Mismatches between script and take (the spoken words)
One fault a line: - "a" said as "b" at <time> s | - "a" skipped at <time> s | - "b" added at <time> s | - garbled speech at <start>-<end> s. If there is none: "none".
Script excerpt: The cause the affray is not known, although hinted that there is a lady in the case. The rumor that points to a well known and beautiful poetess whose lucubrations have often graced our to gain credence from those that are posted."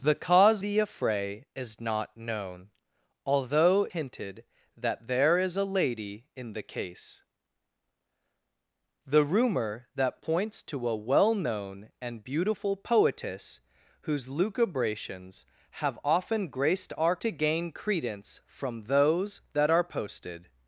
none